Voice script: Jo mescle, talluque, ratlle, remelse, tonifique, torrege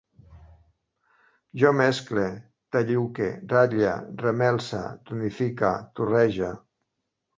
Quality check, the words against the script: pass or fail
pass